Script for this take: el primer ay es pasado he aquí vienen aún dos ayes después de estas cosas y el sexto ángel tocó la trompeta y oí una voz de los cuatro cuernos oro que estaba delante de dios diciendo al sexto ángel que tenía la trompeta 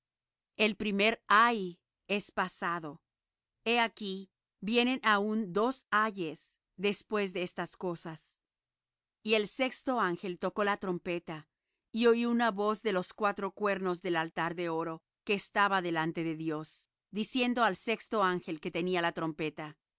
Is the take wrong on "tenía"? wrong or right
right